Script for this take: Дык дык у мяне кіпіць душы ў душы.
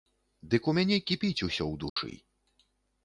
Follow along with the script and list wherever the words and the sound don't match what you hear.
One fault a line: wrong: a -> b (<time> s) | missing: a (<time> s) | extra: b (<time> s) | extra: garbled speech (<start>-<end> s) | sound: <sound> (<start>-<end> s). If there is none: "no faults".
missing: дык (0.7 s)
wrong: душы -> усё (1.5 s)
sound: dropout (1.9-2.0 s)